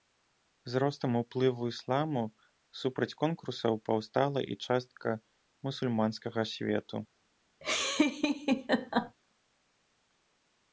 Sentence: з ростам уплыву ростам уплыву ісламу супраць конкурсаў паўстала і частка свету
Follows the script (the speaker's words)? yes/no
no